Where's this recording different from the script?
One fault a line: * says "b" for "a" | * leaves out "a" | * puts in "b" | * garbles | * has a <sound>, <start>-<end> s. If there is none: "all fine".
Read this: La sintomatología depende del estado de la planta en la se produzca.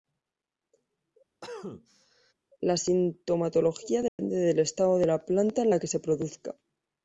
* has a cough, 1.4-2.3 s
* has a dropout, 4.1-4.2 s
* puts in "que"